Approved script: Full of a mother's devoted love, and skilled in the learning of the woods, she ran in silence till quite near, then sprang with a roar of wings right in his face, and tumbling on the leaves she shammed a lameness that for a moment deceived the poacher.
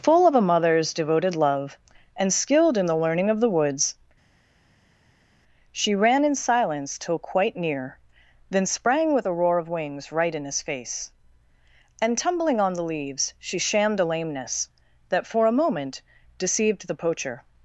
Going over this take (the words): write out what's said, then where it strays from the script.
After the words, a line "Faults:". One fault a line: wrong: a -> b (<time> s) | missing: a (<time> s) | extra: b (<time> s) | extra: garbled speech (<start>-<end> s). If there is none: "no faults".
Full of a mother's devoted love, and skilled in the learning of the woods, she ran in silence till quite near, then sprang with a roar of wings right in his face, and tumbling on the leaves she shammed a lameness that for a moment deceived the poacher.
Faults:
no faults